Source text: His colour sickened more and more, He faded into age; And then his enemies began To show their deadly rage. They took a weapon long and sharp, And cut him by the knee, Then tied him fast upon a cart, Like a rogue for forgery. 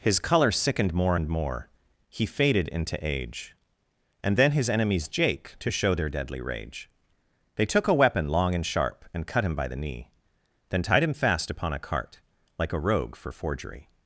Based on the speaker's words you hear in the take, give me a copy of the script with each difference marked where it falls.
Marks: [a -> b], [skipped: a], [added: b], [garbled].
His colour sickened more and more, He faded into age; And then his enemies [began -> jake] To show their deadly rage. They took a weapon long and sharp, And cut him by the knee, Then tied him fast upon a cart, Like a rogue for forgery.